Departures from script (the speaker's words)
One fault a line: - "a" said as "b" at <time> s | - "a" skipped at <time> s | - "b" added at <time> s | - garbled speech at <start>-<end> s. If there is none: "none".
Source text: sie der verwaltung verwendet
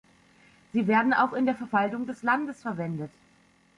- "werden auch in" added at 0.9 s
- "des landes" added at 2.0 s